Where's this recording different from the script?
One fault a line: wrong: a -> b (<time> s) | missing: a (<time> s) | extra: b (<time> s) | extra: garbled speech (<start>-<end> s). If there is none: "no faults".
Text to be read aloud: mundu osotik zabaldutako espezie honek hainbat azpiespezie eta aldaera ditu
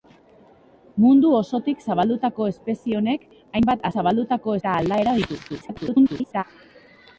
wrong: azpiespezie -> zabaldutako (3.9 s)
extra: garbled speech (5.5-6.4 s)